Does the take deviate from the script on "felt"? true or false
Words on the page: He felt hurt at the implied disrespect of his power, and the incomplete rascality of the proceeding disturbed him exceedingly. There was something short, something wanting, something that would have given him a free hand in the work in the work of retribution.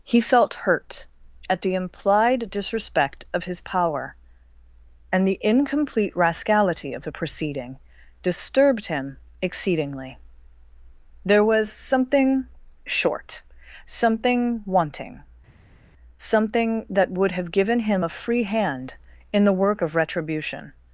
false